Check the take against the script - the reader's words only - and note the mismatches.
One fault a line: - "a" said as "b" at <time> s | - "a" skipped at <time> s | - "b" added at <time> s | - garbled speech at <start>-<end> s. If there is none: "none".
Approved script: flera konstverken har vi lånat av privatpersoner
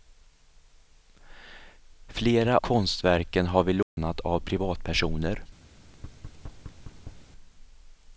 none